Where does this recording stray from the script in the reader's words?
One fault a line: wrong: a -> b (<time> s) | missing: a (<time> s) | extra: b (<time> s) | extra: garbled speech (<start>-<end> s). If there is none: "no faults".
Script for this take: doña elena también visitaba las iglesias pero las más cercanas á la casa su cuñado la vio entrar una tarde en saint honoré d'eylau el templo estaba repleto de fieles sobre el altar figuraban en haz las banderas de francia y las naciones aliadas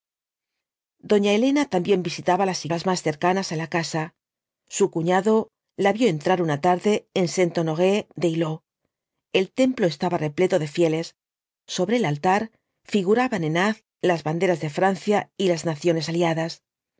missing: iglesias pero (2.6 s)